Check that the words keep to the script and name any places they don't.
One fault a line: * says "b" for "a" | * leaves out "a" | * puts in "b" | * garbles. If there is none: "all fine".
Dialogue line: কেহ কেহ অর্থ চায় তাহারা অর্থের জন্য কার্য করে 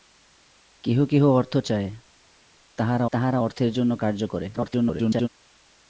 * puts in "তাহারা"
* garbles